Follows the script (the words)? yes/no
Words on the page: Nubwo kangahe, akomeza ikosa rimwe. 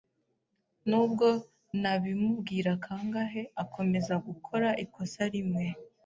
no